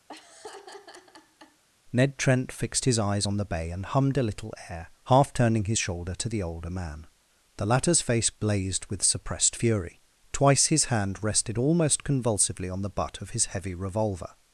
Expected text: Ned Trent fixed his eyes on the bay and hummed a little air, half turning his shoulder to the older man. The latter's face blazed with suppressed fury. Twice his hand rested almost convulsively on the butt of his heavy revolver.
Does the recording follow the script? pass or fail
pass